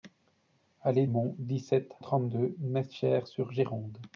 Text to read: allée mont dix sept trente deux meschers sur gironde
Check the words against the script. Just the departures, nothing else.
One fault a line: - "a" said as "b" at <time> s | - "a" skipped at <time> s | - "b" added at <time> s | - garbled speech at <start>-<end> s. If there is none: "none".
none